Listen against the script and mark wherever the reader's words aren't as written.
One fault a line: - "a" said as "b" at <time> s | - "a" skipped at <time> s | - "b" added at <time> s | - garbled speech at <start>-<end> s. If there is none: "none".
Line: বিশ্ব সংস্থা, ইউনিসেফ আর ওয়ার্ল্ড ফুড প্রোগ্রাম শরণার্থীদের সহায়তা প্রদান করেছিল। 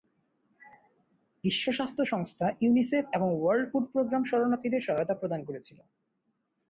- "স্বাস্থ্য" added at 1.7 s
- "আর" said as "এবং" at 3.1 s